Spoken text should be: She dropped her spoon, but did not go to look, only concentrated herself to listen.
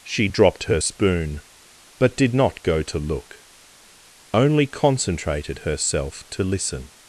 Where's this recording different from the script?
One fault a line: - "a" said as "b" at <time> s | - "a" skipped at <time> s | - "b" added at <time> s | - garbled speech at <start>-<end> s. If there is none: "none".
none